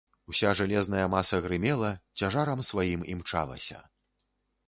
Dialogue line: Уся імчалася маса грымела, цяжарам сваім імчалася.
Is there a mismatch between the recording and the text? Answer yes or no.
yes